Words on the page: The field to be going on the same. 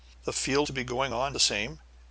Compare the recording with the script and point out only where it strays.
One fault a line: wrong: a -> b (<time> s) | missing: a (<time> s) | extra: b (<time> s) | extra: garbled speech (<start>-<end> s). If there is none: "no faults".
no faults